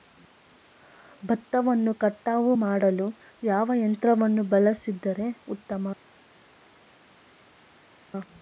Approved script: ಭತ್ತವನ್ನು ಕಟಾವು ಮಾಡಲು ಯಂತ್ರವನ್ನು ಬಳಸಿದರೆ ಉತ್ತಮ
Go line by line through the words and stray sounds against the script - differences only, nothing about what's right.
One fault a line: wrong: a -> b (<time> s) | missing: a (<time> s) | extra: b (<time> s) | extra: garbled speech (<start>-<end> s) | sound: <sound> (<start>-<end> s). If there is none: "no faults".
extra: ಯಾವ (3.4 s)